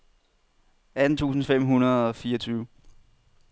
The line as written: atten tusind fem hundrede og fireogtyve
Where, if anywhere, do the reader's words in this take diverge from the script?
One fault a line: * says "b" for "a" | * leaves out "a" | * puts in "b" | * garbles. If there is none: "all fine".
all fine